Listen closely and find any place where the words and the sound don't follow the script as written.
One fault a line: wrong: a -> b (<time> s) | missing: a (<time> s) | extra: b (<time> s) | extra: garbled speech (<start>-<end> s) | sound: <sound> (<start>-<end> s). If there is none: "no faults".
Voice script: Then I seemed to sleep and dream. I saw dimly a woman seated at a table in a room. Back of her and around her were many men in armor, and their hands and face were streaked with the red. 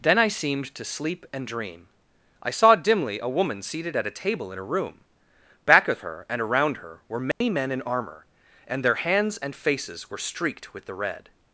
sound: dropout (7.3-7.4 s)
wrong: face -> faces (9.5 s)